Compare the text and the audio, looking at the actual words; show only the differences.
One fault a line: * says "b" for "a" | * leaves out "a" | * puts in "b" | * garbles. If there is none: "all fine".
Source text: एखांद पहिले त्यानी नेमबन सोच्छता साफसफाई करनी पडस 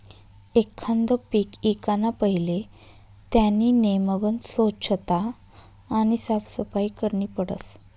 * puts in "पीक ईकाना"
* puts in "आणि"